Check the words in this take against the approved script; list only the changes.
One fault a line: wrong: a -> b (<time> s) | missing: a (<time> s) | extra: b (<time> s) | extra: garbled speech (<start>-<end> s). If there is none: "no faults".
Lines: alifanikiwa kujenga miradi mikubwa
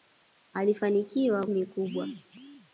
missing: kujenga miradi (1.5 s)